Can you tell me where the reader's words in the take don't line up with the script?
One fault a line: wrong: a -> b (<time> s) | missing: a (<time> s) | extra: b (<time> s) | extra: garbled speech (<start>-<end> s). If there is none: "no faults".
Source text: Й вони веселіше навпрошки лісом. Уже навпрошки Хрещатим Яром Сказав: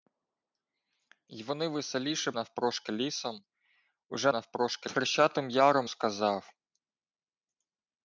no faults